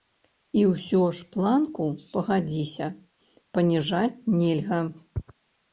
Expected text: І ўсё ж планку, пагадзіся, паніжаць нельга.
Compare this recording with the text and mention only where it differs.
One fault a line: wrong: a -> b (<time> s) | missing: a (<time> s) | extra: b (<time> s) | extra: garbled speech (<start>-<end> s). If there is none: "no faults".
no faults